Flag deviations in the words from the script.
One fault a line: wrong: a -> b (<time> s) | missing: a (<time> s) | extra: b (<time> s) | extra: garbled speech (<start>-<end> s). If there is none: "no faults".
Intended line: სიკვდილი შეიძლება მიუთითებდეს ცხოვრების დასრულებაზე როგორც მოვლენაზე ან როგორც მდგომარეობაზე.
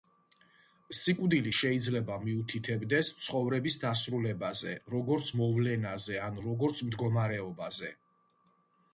no faults